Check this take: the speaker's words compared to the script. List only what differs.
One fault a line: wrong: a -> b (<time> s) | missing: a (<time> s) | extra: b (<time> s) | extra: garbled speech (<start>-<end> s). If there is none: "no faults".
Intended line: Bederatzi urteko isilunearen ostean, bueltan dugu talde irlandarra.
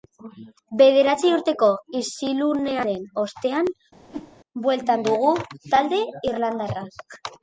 no faults